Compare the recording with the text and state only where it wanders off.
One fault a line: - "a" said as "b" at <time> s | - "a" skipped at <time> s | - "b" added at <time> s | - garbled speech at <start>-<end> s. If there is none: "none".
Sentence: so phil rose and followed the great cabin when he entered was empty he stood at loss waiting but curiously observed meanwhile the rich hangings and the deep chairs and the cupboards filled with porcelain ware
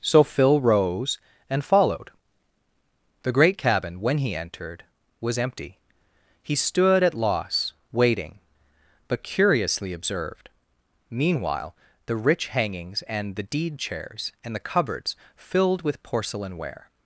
- "deep" said as "deed" at 13.4 s